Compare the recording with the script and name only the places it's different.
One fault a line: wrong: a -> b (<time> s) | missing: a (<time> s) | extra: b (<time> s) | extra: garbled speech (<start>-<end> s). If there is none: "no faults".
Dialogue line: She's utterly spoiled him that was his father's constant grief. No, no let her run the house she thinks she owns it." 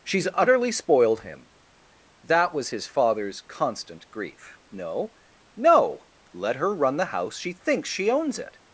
no faults